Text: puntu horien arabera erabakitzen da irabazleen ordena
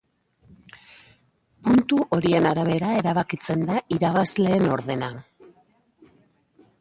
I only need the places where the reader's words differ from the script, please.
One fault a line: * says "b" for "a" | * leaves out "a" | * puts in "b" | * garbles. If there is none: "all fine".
all fine